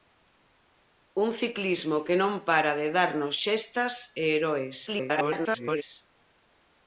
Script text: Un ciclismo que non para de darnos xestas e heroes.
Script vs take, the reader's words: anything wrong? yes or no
yes